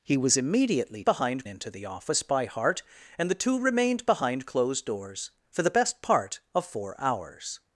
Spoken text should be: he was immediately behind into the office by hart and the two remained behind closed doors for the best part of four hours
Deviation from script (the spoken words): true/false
false